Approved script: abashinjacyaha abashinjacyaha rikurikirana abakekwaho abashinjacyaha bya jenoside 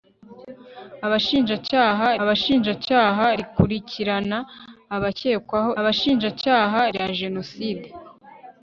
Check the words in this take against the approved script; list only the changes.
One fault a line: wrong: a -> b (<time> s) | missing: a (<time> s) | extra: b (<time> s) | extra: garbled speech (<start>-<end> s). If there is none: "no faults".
no faults